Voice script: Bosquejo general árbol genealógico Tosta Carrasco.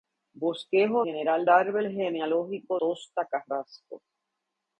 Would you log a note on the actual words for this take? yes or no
no